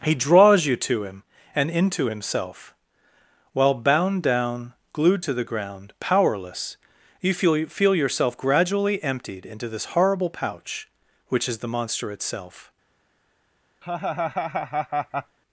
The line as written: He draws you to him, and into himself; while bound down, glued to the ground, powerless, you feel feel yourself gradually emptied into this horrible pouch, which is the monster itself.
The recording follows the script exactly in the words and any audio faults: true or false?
false